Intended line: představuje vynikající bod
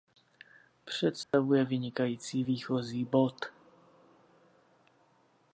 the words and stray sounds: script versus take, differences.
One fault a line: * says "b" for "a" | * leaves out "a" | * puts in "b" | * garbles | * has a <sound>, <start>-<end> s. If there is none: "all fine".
* has a dropout, 1.2-1.3 s
* puts in "výchozí"